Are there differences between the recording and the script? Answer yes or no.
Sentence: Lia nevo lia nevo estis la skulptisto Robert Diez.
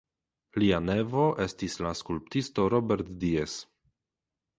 yes